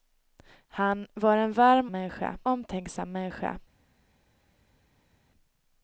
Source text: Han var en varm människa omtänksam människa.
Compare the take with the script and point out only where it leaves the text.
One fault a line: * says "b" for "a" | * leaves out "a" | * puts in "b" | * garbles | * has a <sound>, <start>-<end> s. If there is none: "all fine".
all fine